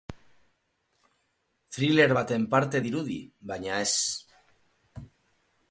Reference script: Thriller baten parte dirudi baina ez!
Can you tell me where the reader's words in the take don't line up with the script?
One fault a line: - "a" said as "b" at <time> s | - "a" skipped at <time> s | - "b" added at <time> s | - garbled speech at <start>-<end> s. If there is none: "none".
none